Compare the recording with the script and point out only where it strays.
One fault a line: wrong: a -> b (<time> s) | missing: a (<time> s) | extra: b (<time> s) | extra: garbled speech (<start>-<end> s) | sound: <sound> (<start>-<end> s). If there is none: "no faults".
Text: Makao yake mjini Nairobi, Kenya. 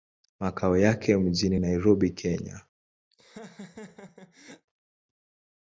sound: laugh (3.1-4.7 s)